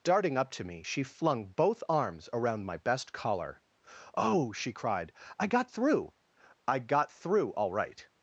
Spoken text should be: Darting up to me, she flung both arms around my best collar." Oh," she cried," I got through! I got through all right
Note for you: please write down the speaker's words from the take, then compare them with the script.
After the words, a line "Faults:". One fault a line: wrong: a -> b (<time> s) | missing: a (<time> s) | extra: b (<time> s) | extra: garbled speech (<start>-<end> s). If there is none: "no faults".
Darting up to me, she flung both arms around my best collar." Oh," she cried," I got through! I got through all right
Faults:
no faults